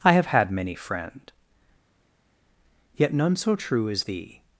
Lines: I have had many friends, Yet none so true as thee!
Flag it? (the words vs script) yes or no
yes